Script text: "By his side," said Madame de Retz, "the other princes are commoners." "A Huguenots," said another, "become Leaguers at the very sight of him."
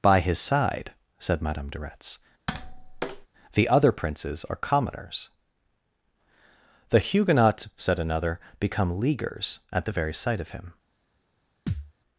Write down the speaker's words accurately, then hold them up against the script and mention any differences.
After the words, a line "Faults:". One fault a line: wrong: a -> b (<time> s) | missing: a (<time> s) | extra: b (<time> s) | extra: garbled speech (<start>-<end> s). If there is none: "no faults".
"By his side," said Madame de Retz, "the other princes are commoners." "The Huguenots," said another, "become Leaguers at the very sight of him."
Faults:
wrong: A -> The (6.9 s)